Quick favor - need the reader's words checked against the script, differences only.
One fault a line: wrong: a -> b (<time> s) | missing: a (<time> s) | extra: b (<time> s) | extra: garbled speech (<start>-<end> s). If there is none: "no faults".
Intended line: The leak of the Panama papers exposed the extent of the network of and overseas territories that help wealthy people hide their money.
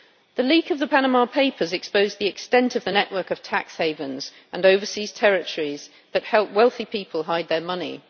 extra: tax havens (3.4 s)